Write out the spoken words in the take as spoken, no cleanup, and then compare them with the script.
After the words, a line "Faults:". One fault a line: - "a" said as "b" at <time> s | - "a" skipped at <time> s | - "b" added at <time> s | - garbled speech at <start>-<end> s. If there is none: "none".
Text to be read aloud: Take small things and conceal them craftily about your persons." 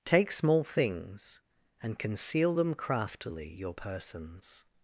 Take small things and conceal them craftily your persons."
Faults:
- "about" skipped at 3.5 s